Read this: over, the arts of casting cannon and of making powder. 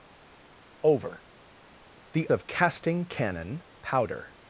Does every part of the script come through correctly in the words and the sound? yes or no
no